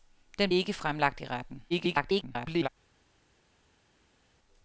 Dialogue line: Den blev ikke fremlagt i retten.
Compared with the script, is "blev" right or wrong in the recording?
wrong